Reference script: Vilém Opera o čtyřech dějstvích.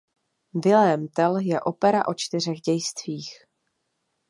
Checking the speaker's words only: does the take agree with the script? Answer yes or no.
no